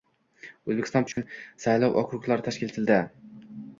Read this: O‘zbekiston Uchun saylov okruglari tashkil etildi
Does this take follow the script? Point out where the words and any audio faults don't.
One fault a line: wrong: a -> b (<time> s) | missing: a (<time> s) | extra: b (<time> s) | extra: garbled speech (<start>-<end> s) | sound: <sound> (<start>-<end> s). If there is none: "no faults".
sound: dropout (1.1-1.2 s)